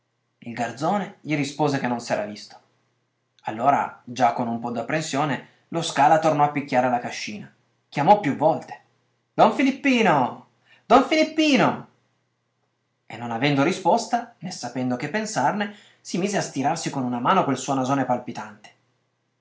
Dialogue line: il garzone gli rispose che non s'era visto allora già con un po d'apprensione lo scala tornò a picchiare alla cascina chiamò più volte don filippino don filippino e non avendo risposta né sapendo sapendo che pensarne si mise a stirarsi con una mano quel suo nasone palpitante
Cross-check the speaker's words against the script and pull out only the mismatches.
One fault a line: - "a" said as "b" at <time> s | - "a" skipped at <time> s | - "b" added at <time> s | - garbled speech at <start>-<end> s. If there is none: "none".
- "sapendo" skipped at 14.9 s